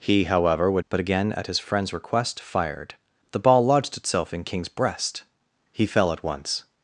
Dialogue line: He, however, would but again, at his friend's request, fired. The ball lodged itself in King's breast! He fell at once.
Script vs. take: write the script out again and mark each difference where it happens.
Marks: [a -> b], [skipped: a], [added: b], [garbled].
He, however, would but again, at his friend's request, fired. The ball lodged itself in King's breast! He fell at once.